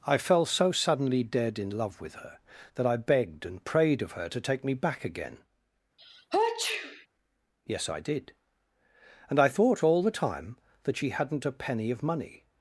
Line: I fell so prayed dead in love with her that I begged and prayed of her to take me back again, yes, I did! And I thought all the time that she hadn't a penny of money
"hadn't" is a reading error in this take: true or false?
false